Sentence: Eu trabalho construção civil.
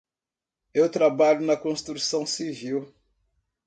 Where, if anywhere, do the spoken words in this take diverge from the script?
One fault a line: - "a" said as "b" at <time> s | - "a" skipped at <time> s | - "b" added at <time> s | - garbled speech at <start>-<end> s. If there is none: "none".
- "na" added at 1.4 s